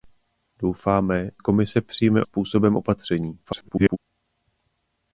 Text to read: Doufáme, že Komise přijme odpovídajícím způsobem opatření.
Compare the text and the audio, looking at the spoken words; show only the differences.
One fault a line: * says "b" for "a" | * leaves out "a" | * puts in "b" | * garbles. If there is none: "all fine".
* leaves out "že"
* leaves out "odpovídajícím"
* garbles